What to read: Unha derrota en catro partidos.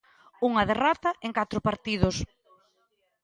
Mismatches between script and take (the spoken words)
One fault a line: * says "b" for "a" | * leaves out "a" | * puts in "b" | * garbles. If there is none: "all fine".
all fine